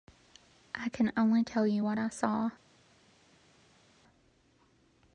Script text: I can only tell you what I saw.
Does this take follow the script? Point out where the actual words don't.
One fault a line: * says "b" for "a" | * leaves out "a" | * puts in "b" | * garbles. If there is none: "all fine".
all fine